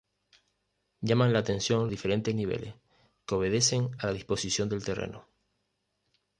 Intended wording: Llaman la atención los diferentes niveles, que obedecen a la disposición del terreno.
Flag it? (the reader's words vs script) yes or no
yes